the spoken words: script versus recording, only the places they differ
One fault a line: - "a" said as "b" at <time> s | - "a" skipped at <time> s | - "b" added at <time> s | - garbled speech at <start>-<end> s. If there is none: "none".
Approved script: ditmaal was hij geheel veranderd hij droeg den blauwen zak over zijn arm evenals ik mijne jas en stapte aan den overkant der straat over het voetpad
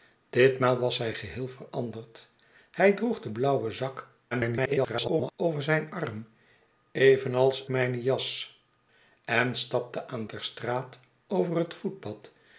- garbled speech at 4.3-5.3 s
- "ik" skipped at 7.6 s
- "den overkant" skipped at 10.3 s